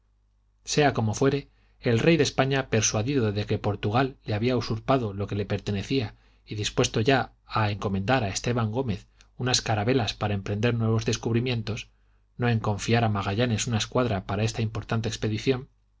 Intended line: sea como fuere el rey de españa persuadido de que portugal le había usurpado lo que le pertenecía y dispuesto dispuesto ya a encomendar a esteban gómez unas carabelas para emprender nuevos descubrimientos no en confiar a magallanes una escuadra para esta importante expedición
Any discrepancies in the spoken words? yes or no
yes